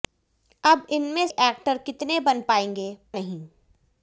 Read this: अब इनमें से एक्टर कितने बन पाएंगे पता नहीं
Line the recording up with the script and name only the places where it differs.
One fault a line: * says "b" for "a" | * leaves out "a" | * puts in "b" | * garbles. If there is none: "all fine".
* leaves out "से"
* leaves out "पता"